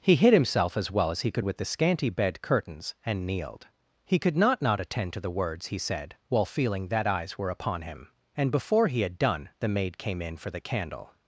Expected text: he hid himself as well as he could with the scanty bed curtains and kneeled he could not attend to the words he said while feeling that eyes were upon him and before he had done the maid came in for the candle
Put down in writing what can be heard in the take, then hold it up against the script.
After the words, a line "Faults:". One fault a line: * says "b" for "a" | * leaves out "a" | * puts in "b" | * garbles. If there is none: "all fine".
he hid himself as well as he could with the scanty bed curtains and kneeled he could not not attend to the words he said while feeling that eyes were upon him and before he had done the maid came in for the candle
Faults:
* puts in "not"